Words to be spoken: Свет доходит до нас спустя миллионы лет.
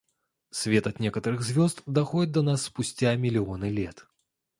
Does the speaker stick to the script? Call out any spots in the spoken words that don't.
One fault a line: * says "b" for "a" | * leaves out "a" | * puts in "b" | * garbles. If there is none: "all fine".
* puts in "от некоторых звезд"